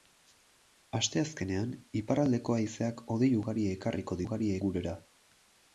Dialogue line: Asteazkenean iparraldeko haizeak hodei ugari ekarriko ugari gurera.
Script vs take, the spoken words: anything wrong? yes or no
no